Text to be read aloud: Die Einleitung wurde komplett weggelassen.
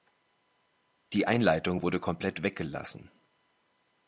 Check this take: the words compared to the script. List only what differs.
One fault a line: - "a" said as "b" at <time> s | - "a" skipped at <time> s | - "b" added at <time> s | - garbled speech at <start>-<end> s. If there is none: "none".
none